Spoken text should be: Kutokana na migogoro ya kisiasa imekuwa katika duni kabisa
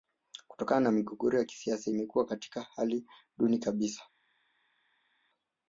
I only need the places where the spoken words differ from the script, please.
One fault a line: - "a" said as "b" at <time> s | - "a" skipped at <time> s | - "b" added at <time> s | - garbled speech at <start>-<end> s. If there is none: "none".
- "hali" added at 2.6 s